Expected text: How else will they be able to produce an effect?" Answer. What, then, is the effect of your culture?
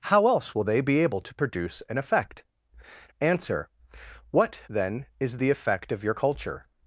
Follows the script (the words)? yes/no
yes